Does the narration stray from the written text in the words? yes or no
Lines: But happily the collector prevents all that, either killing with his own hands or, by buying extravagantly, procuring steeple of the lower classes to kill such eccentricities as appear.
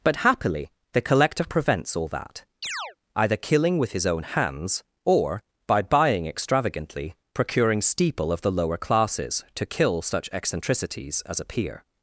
no